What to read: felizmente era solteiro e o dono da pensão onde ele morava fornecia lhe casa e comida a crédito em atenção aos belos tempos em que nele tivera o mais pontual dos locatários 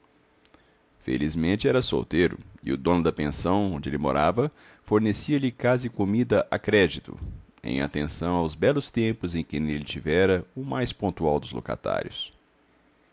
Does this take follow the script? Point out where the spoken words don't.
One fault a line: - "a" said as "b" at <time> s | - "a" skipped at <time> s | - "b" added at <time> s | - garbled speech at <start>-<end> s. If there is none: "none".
none